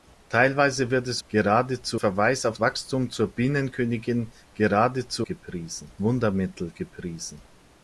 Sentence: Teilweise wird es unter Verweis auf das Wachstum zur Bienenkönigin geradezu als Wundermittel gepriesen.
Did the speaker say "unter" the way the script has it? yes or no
no